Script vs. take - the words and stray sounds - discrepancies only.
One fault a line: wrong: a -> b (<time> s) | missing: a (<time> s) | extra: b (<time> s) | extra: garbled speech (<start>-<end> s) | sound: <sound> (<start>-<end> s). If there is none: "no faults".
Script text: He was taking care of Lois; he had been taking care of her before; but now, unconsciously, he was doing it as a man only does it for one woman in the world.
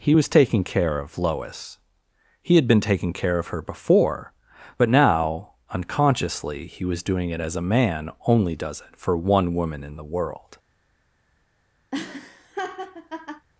sound: laugh (11.9-13.5 s)